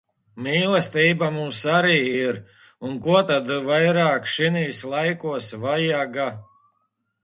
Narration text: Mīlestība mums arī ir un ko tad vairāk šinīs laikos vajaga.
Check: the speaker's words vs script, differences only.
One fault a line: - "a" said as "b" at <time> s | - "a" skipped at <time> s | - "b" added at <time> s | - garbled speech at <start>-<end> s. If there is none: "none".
none